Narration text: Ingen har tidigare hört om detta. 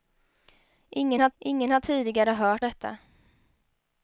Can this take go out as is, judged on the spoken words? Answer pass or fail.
fail